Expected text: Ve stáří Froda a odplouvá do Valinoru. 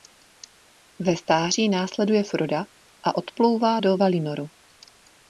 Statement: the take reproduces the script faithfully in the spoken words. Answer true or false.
false